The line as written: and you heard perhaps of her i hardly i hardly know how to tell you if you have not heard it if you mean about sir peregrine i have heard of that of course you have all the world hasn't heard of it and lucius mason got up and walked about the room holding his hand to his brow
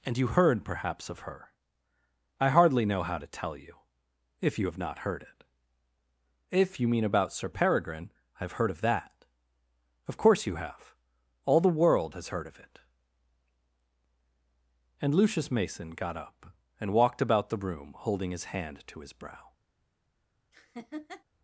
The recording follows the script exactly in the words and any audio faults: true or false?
false